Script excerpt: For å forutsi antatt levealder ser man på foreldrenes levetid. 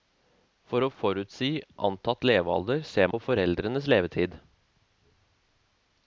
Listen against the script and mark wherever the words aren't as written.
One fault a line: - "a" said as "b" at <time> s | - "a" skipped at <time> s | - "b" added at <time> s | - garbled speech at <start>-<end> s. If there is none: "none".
- "man" skipped at 3.1 s